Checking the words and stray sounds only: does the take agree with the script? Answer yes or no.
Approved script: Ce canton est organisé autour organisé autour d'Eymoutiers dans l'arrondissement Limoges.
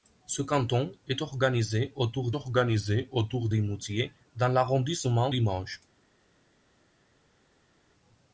yes